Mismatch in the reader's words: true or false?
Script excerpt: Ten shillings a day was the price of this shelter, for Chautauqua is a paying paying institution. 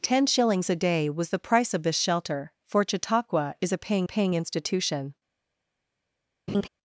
false